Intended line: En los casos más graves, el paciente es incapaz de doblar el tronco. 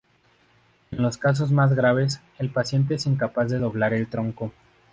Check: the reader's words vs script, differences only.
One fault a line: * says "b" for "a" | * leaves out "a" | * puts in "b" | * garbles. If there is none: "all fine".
all fine